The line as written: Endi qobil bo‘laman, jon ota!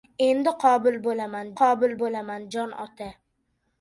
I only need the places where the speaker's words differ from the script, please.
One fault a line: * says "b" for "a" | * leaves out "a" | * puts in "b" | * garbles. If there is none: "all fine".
* puts in "qobil bo‘laman"